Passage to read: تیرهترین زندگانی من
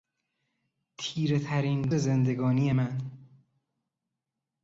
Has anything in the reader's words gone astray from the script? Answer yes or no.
no